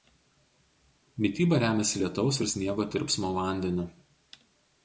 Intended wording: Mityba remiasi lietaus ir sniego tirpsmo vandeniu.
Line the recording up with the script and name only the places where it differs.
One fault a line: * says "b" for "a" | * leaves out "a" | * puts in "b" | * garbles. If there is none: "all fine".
all fine